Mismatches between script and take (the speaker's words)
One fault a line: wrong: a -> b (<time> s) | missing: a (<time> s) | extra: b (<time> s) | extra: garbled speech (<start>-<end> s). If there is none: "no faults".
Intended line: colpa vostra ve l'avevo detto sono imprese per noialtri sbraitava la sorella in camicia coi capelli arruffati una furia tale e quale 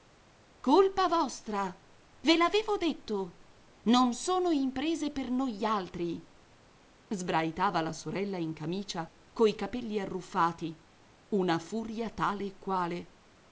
extra: non (3.8 s)